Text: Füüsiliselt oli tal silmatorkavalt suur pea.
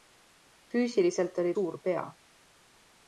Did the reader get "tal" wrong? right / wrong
wrong